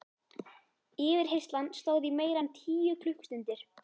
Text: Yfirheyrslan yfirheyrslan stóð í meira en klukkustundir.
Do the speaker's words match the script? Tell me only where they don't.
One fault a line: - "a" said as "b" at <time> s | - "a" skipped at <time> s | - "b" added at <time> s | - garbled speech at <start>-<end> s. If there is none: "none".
- "yfirheyrslan" skipped at 1.7 s
- "tíu" added at 2.6 s